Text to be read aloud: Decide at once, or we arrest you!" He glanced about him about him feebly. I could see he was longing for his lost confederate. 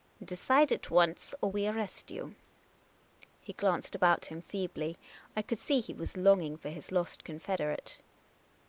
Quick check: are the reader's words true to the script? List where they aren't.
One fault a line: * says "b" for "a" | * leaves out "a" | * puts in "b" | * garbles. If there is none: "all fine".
* leaves out "about him"